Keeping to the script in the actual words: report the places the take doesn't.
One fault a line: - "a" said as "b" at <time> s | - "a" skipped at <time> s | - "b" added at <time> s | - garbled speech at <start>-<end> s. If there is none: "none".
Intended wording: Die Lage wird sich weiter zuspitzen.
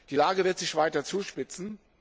none